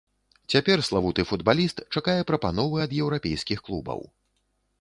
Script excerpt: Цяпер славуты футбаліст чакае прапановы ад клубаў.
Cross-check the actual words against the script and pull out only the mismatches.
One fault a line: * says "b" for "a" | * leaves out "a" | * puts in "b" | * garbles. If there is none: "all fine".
* puts in "еўрапейскіх"